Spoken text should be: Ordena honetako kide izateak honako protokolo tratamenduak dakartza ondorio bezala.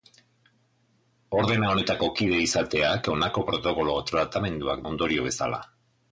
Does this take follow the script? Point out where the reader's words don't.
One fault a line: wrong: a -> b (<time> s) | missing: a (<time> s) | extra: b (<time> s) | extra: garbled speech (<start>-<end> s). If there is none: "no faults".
missing: dakartza (4.8 s)